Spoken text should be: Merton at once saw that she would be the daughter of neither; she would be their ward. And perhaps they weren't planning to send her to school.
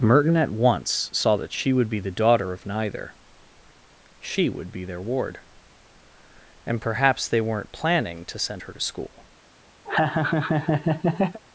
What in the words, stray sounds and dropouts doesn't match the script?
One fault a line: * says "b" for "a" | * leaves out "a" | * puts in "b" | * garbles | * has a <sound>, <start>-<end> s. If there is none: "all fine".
* has a laugh, 9.8-11.4 s